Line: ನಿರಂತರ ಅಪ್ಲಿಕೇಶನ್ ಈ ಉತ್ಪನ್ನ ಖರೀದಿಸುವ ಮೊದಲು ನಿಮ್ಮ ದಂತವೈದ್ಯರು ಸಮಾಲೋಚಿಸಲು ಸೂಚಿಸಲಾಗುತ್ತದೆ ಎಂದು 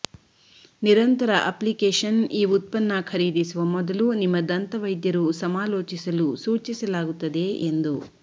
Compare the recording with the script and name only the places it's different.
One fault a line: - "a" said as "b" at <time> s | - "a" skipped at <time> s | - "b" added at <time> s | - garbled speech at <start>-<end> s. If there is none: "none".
none